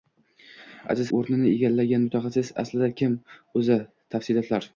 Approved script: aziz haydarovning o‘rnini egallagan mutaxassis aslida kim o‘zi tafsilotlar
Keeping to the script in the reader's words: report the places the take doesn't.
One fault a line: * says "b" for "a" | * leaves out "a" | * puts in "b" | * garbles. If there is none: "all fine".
* leaves out "haydarovning"